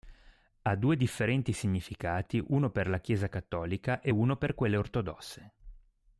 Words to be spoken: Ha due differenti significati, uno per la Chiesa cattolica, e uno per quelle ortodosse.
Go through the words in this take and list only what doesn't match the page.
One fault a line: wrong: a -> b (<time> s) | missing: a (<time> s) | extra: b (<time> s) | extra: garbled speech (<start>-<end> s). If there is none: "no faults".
no faults